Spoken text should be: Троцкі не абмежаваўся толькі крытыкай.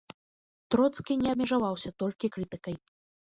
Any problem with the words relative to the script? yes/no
no